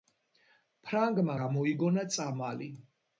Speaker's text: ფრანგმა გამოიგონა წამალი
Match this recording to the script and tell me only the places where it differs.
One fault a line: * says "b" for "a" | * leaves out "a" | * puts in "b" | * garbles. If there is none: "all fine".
all fine